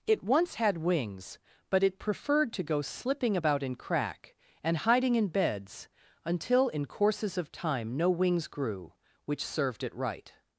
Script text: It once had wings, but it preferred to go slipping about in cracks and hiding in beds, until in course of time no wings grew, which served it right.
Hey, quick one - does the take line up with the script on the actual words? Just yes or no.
no